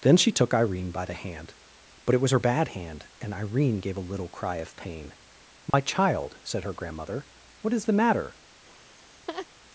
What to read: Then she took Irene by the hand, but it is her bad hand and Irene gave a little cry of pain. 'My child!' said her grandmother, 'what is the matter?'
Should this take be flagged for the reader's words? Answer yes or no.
yes